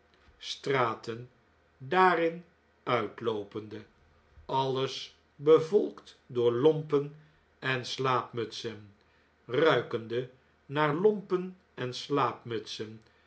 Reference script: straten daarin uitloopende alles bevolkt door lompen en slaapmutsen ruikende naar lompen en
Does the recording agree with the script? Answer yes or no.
yes